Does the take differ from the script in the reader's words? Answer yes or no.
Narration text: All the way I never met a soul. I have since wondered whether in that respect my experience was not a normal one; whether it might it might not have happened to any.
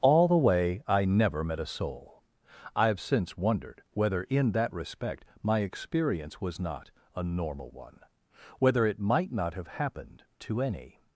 yes